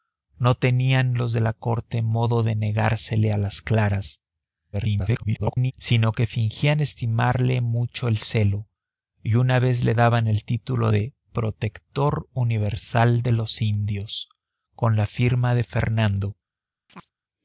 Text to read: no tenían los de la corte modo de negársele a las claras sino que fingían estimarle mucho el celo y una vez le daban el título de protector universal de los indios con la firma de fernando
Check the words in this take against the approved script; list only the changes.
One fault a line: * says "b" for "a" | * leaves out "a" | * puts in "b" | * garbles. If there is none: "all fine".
* garbles